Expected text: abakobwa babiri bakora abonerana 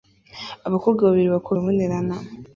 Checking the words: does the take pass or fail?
pass